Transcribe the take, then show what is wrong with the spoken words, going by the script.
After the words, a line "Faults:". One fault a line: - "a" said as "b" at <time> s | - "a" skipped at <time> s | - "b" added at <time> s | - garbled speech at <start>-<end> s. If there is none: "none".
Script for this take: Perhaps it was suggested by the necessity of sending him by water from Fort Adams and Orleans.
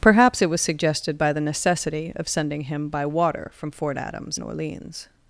Perhaps it was suggested by the necessity of sending him by water from Fort Adams and Orleans.
Faults:
none